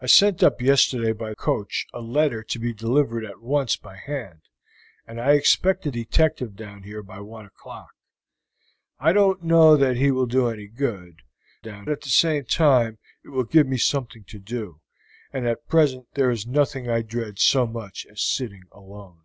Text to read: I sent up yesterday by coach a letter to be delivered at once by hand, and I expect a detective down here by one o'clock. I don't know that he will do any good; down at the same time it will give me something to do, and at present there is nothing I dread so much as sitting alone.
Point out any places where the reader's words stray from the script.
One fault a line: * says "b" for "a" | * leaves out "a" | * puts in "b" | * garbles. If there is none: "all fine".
all fine